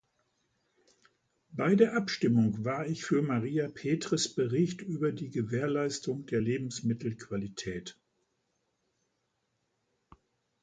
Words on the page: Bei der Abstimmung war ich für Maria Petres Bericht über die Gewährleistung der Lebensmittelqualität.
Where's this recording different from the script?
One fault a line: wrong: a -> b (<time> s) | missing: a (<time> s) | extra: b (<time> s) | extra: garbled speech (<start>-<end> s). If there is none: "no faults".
no faults